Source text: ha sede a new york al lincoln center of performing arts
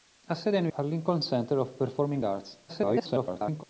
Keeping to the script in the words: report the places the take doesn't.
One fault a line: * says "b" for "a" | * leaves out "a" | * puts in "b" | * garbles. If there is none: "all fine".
* leaves out "york"
* garbles